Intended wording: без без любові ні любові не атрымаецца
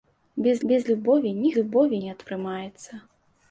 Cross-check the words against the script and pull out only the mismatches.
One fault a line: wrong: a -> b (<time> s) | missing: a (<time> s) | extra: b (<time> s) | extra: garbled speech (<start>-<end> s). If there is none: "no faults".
no faults